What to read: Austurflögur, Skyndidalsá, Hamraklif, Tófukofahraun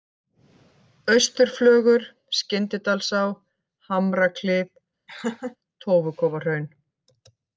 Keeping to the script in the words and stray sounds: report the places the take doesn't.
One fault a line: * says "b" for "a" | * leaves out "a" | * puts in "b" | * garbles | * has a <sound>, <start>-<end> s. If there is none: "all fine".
* has a laugh, 5.1-5.6 s